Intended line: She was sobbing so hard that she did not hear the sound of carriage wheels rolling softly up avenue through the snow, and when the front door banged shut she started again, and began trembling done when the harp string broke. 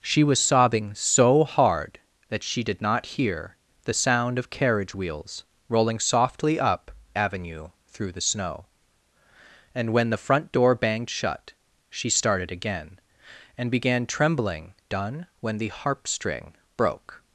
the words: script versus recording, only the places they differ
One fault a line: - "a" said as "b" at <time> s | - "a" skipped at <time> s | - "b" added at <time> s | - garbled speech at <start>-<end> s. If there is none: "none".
none